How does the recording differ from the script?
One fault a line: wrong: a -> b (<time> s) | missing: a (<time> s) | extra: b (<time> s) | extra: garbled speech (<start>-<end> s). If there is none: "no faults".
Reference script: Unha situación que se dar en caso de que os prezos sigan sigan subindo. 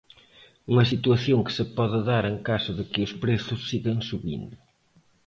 extra: pode (1.8 s)
missing: sigan (4.0 s)